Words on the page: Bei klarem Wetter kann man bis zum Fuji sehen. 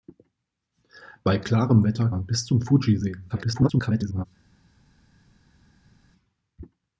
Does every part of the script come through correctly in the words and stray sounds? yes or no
no